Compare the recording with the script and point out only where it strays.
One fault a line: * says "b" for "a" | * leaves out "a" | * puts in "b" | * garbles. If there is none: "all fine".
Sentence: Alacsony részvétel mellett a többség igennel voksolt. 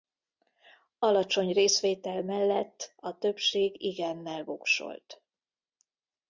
all fine